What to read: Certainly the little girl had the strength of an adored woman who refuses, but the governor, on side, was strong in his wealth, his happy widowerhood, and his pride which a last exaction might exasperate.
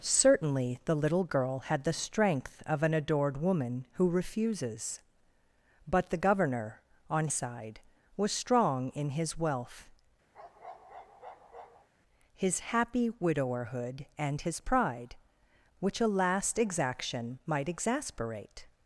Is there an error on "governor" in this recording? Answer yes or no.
no